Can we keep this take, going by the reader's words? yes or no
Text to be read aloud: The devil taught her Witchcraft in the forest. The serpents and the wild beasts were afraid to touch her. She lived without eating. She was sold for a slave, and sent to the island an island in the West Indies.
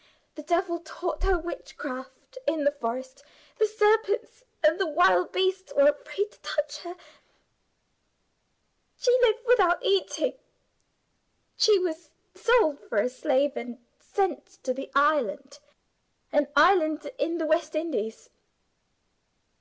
yes